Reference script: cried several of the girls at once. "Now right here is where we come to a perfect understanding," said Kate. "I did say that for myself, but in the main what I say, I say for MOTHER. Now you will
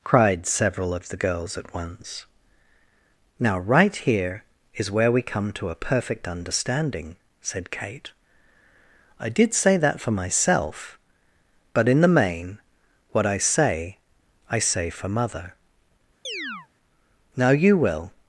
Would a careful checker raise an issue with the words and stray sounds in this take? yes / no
yes